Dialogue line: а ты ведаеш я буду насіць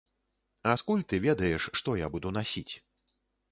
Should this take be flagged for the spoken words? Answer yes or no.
yes